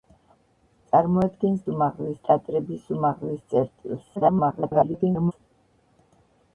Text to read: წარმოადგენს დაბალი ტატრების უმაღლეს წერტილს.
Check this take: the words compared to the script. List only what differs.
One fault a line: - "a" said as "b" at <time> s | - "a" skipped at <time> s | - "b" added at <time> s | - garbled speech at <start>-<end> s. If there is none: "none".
- "დაბალი" said as "უმაღლეს" at 1.7 s
- garbled speech at 4.2-5.3 s